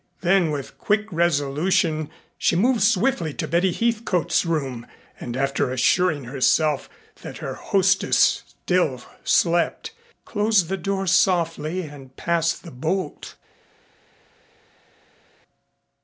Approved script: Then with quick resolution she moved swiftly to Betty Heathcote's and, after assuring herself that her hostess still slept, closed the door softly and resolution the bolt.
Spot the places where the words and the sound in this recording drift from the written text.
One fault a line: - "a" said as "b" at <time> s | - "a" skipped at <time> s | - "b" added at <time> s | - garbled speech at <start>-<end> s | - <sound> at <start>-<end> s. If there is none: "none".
- "room" added at 4.5 s
- "resolution" said as "passed" at 12.2 s